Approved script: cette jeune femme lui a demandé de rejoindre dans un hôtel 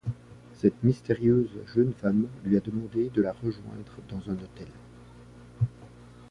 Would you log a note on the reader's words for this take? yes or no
yes